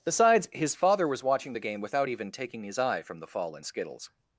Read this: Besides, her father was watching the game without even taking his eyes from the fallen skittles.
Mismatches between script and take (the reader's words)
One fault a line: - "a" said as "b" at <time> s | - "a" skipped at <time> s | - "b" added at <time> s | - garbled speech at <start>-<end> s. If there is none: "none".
- "her" said as "his" at 0.5 s
- "eyes" said as "eye" at 2.8 s